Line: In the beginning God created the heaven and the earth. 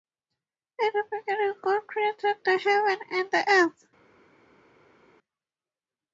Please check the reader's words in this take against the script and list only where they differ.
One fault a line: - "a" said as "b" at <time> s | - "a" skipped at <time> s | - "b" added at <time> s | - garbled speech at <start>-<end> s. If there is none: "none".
none